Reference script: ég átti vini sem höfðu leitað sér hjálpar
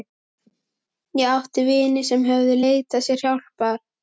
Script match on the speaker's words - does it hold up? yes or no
yes